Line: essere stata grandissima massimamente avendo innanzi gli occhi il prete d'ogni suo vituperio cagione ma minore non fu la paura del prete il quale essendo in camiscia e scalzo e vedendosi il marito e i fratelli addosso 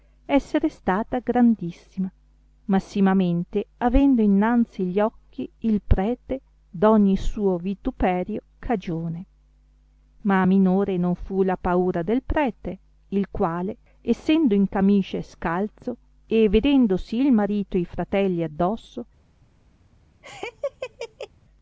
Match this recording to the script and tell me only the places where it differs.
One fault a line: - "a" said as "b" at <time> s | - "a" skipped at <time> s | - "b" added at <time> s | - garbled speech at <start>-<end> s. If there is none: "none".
none